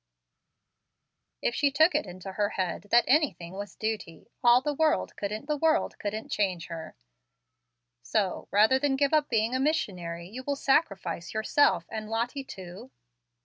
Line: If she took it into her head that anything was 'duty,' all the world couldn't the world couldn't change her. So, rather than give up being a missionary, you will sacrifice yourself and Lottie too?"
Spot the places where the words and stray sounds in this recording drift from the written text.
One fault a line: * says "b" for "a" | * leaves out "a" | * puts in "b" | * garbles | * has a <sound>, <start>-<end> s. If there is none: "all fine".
all fine